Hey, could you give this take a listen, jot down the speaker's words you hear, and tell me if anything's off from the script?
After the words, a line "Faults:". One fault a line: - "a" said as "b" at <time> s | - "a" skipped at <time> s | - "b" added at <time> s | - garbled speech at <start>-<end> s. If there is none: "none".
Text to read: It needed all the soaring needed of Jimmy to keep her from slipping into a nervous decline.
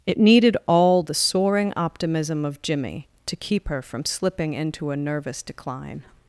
It needed all the soaring optimism of Jimmy to keep her from slipping into a nervous decline.
Faults:
- "needed" said as "optimism" at 1.8 s